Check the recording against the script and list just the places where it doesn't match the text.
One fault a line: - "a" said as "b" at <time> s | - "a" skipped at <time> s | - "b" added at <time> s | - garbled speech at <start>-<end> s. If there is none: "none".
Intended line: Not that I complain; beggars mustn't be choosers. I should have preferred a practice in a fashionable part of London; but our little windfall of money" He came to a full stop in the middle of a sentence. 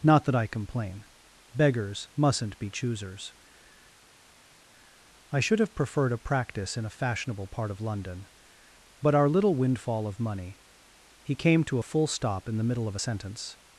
none